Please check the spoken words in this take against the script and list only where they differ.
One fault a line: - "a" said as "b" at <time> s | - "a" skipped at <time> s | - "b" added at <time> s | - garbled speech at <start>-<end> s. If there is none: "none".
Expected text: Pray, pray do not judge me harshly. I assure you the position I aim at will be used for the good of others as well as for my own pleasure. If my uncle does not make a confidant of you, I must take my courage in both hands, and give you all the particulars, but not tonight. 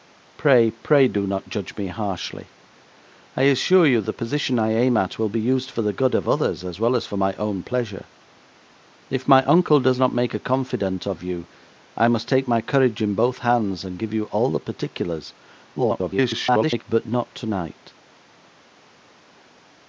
- garbled speech at 15.8-16.8 s